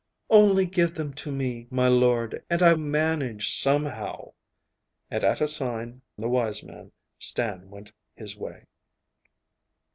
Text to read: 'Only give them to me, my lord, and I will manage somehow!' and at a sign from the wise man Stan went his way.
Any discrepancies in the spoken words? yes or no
yes